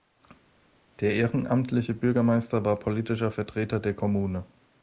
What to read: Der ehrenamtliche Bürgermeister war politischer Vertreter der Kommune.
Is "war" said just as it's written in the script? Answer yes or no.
yes